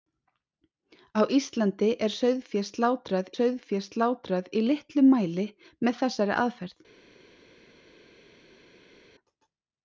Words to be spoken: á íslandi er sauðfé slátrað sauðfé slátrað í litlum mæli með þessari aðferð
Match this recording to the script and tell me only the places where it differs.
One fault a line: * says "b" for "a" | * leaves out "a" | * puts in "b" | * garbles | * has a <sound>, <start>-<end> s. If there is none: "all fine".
all fine